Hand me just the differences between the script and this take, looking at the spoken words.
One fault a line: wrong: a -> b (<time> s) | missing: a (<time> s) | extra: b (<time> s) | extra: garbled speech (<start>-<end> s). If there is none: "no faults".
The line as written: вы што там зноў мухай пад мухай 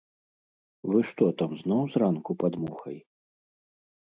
wrong: мухай -> зранку (2.0 s)